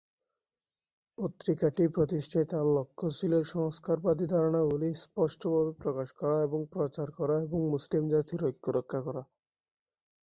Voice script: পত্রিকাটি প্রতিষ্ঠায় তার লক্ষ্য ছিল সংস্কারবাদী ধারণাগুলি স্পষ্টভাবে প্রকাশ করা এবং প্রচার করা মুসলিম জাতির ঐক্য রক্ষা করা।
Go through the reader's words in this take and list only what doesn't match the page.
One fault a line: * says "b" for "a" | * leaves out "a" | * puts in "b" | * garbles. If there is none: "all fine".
* puts in "এবং"